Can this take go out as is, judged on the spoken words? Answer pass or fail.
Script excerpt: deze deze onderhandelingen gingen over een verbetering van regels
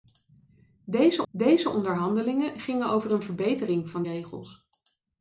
pass